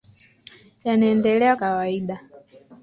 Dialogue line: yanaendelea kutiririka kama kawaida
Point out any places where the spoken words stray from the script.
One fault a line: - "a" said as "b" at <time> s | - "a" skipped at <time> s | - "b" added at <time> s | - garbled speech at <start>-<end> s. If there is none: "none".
- "kutiririka kama" skipped at 1.6 s